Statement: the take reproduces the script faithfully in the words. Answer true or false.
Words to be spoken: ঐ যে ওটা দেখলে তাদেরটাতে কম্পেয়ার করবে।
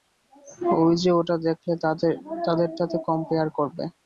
true